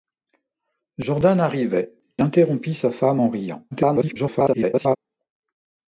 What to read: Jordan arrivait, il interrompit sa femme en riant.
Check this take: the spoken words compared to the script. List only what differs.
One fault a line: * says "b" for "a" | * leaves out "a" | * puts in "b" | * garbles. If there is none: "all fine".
* leaves out "il"
* garbles